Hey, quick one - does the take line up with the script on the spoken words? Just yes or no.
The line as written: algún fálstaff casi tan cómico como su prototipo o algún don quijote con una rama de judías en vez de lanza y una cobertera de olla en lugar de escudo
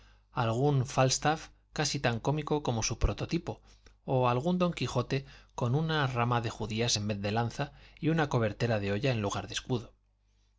yes